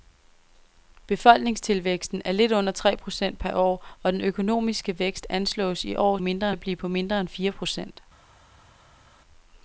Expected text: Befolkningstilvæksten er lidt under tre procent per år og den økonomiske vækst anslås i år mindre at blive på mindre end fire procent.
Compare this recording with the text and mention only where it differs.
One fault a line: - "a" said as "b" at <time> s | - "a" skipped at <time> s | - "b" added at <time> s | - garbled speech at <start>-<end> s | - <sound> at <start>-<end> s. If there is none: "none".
none